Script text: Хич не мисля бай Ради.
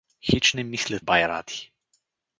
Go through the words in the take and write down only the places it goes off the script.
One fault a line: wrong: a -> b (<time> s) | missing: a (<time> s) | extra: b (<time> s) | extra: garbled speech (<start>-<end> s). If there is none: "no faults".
no faults